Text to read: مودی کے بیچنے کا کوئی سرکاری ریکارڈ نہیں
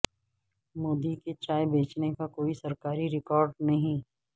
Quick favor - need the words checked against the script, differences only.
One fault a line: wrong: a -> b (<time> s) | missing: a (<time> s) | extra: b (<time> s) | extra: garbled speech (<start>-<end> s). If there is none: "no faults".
extra: چائے (1.4 s)